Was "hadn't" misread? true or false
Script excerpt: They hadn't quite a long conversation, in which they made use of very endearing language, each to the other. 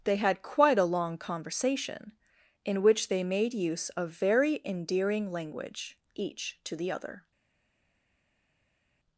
true